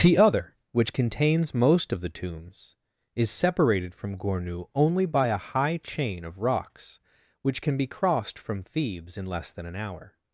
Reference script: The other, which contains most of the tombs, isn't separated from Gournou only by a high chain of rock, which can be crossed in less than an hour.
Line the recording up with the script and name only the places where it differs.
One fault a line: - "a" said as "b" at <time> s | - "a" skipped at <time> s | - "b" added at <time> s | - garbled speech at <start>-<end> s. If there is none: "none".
- "isn't" said as "is" at 3.1 s
- "rock" said as "rocks" at 6.4 s
- "from Thebes" added at 8.4 s